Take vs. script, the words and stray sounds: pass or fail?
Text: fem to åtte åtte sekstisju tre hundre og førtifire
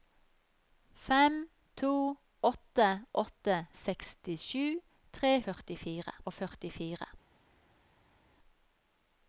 fail